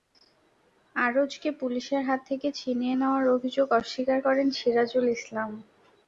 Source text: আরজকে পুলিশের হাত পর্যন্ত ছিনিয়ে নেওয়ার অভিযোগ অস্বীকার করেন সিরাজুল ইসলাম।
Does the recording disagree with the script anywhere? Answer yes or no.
yes